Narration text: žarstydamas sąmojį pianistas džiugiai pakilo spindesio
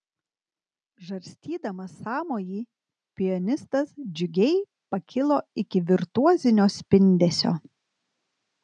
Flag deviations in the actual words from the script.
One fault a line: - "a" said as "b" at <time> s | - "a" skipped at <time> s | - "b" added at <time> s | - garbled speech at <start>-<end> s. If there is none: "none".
- "iki virtuozinio" added at 5.7 s